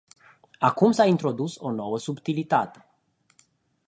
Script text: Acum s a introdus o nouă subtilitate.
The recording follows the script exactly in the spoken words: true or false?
true